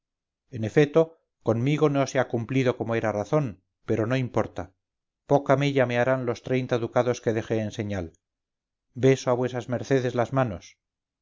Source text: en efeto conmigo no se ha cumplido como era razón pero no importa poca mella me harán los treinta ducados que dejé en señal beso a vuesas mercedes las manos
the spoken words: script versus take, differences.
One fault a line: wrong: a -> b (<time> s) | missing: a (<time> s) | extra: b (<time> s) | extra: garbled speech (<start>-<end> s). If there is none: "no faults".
no faults